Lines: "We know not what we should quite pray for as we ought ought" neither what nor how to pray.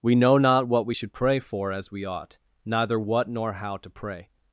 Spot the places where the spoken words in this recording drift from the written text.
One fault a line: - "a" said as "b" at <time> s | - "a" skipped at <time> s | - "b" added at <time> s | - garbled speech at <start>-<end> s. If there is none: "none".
- "quite" skipped at 1.1 s
- "ought" skipped at 2.4 s